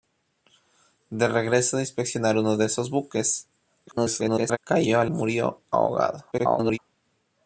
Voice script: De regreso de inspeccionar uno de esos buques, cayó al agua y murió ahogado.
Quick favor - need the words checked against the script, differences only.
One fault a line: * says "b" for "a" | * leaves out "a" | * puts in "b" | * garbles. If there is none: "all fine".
* garbles
* leaves out "agua y"
* garbles